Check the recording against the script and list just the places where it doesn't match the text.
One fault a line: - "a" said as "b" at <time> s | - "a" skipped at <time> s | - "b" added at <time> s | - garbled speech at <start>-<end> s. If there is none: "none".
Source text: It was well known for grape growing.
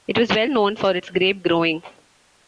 - "its" added at 0.9 s